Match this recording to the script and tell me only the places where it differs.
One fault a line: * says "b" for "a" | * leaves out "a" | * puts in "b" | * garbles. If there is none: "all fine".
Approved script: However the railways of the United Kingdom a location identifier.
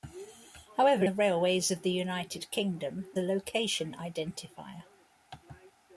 all fine